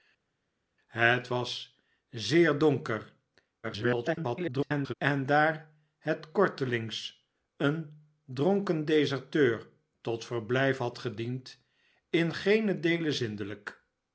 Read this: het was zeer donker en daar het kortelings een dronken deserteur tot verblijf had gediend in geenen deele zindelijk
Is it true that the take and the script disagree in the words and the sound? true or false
true